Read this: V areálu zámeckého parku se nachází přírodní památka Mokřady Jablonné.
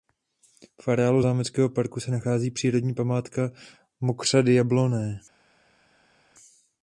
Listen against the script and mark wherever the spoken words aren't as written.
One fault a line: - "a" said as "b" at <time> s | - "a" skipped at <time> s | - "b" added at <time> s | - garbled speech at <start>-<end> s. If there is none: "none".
none